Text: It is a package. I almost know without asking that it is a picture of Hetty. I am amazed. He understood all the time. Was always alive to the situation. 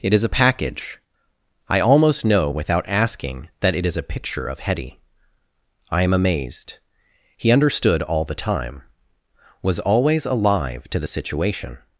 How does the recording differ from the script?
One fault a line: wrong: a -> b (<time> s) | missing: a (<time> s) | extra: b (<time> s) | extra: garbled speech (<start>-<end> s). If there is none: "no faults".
no faults